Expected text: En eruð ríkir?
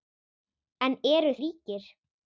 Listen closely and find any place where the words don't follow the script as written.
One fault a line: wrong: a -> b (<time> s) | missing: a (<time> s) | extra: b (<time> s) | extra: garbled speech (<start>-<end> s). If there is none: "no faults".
no faults